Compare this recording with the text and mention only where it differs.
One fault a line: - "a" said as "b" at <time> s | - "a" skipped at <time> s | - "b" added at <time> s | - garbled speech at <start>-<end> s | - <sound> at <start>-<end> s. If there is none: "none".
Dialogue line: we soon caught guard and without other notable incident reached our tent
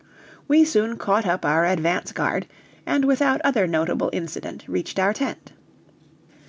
- "up our advance" added at 1.3 s